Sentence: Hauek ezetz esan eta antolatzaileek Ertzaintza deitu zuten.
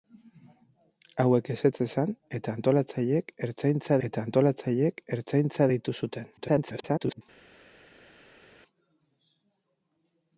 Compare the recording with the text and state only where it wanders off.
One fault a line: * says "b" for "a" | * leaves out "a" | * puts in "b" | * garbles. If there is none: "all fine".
* puts in "eta antolatzaileek Ertzaintza"
* garbles